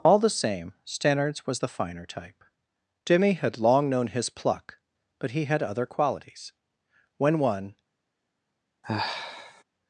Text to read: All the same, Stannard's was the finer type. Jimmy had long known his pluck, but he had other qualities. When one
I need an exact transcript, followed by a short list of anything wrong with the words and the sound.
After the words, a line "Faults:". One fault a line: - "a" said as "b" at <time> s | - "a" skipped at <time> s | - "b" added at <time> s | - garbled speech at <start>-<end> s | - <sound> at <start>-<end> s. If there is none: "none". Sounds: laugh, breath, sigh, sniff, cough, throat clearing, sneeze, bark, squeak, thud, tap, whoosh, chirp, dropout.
All the same, Stannard's was the finer type. Jimmy had long known his pluck, but he had other qualities. When one
Faults:
- sigh at 8.8-9.6 s